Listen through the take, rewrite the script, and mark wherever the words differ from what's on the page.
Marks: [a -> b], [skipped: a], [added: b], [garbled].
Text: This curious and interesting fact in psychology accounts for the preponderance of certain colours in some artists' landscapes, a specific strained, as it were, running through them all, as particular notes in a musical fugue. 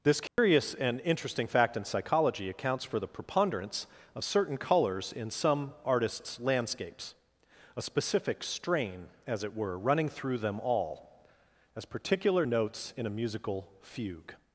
This curious and interesting fact in psychology accounts for the preponderance of certain colours in some artists' landscapes, a specific [strained, -> strain] as it were, running through them all, as particular notes in a musical fugue.